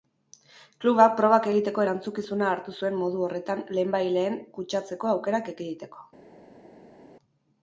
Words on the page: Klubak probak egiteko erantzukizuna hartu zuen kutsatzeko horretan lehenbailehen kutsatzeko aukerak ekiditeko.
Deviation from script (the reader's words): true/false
true